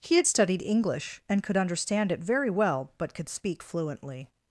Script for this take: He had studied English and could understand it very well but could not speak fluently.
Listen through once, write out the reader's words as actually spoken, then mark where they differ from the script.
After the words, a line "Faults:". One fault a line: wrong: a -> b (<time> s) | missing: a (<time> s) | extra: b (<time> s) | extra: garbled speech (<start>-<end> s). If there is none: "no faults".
He had studied English and could understand it very well but could speak fluently.
Faults:
missing: not (3.3 s)